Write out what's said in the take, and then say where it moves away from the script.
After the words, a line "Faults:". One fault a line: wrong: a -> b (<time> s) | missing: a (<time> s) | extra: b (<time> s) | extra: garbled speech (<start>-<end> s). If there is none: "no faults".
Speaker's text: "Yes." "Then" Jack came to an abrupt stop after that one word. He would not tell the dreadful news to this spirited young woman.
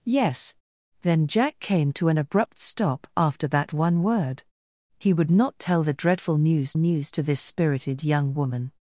"Yes." "Then" Jack came to an abrupt stop after that one word. He would not tell the dreadful news news to this spirited young woman.
Faults:
extra: news (6.8 s)